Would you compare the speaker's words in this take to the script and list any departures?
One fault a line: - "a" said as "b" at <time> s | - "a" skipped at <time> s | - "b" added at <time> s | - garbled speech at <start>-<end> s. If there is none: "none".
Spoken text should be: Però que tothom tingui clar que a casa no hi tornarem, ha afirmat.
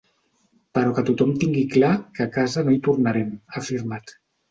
none